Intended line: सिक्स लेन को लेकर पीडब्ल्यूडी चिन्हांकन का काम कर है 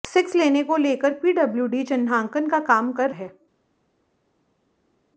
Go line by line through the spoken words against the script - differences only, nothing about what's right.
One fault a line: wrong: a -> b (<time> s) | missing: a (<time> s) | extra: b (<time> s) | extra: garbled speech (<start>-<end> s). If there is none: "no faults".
no faults